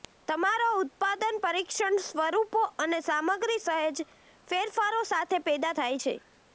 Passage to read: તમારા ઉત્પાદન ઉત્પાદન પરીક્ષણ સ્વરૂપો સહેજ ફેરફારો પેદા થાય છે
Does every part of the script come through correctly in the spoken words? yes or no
no